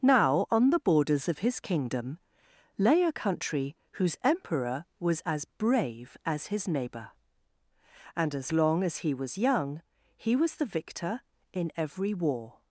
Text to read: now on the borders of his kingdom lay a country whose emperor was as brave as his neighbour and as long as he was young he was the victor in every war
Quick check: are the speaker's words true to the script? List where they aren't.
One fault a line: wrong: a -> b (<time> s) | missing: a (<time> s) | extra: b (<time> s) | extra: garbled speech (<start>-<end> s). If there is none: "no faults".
no faults